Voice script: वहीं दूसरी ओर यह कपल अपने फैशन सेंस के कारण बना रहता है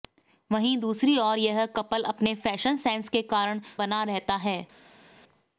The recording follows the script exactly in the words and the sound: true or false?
true